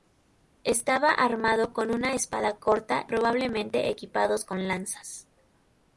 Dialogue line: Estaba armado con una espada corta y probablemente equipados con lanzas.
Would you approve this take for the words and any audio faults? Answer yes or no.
no